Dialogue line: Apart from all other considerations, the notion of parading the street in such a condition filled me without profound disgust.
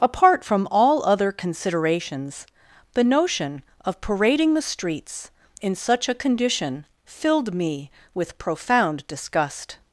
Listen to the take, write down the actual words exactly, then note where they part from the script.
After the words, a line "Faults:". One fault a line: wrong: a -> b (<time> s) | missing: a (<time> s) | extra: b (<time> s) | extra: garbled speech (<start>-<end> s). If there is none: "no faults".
Apart from all other considerations, the notion of parading the streets in such a condition filled me with profound disgust.
Faults:
wrong: street -> streets (4.6 s)
wrong: without -> with (8.1 s)